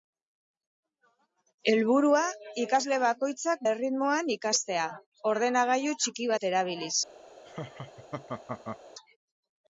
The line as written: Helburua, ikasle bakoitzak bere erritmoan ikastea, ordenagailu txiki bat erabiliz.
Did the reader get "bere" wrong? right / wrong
wrong